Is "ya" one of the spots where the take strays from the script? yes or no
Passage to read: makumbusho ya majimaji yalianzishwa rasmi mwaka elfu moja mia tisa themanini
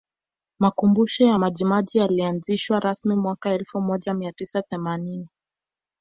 no